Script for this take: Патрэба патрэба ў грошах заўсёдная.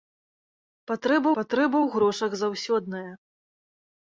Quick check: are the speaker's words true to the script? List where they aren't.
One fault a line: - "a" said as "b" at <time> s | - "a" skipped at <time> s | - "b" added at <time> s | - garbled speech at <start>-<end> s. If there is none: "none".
none